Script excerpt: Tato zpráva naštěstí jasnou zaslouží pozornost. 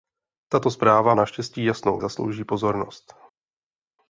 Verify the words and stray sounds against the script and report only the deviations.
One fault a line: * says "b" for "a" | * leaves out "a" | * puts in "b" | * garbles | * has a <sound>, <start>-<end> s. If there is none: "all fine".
all fine